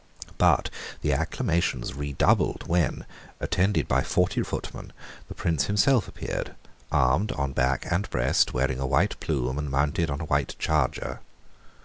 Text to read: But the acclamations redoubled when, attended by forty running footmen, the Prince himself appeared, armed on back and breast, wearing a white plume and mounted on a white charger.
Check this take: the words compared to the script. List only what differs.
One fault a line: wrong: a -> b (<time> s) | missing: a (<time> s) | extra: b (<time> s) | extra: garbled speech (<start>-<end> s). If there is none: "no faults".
missing: running (4.4 s)